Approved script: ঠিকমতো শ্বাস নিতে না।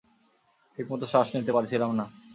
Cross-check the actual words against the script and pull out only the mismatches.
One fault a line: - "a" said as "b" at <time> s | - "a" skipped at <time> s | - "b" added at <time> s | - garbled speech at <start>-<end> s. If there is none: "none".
- "পারছিলাম" added at 1.5 s